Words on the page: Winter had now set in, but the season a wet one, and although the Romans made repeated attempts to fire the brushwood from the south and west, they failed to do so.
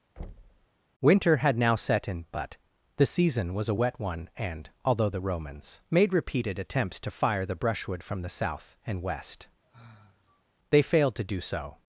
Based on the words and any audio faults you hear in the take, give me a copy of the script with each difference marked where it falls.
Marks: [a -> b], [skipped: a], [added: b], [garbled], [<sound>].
[thud] Winter had now set in, but the season [added: was] a wet one, and although the Romans made repeated attempts to fire the brushwood from the south and west, [sigh] they failed to do so.